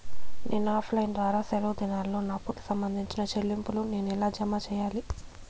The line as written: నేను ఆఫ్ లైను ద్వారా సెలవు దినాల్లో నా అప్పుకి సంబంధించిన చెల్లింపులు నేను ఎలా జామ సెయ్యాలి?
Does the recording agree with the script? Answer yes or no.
yes